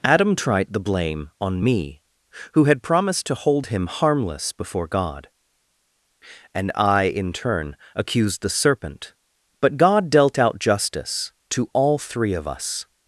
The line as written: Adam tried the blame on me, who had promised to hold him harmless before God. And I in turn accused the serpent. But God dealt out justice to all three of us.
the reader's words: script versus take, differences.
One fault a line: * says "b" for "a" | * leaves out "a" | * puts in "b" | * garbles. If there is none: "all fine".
all fine